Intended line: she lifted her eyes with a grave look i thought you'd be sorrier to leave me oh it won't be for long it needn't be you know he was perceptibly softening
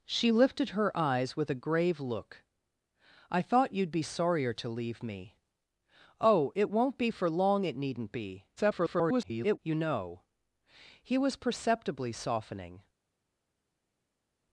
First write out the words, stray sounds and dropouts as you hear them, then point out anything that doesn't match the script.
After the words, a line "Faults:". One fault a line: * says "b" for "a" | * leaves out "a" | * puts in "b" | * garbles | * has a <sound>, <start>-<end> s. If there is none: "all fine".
she lifted her eyes with a grave look i thought you'd be sorrier to leave me oh it won't be for long it needn't be [garbled] you know he was perceptibly softening
Faults:
* garbles